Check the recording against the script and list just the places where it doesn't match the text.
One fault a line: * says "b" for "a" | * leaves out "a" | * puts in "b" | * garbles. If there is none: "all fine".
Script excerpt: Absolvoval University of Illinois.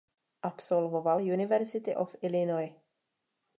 all fine